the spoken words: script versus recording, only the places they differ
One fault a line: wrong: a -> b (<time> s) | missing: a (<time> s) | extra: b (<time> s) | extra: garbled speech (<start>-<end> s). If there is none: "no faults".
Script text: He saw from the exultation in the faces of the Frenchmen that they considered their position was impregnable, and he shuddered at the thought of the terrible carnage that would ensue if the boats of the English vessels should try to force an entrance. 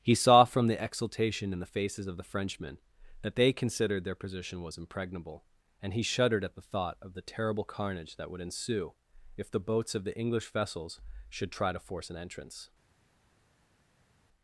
no faults